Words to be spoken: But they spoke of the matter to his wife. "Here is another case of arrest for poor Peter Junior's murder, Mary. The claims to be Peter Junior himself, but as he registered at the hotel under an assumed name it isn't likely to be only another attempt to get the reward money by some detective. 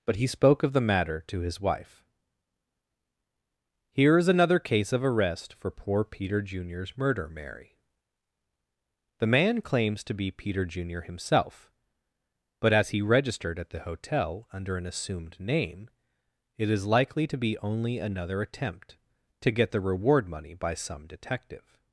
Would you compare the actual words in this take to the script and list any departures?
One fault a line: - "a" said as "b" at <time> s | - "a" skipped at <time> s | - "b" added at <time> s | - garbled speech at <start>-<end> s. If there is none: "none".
- "they" said as "he" at 0.1 s
- "man" added at 9.3 s
- "isn't" said as "is" at 16.7 s